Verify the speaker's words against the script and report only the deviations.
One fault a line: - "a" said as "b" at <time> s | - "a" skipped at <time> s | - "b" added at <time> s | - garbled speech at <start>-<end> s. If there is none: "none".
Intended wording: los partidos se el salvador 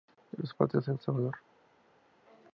none